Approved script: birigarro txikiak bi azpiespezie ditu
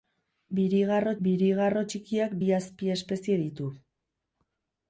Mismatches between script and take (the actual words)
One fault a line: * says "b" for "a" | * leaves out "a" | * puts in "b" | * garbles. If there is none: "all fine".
* puts in "birigarro"